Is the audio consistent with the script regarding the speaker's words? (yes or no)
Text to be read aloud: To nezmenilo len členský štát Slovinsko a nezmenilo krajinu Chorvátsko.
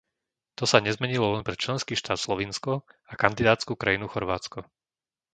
no